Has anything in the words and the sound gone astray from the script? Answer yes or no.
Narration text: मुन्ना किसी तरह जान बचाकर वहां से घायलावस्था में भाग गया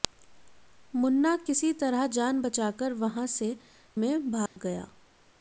yes